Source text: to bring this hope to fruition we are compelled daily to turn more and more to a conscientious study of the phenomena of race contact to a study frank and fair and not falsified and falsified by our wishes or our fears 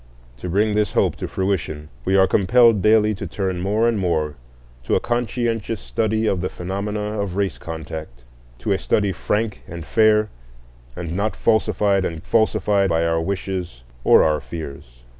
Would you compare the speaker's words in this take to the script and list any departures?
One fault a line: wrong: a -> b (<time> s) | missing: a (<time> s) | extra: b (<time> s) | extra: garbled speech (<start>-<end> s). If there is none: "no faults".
no faults